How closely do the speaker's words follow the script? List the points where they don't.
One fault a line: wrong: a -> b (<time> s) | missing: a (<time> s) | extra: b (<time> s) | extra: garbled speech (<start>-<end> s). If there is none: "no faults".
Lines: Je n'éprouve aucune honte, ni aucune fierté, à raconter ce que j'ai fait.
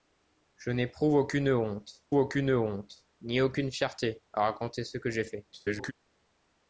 extra: aucune honte (2.1 s)
extra: garbled speech (5.5-5.9 s)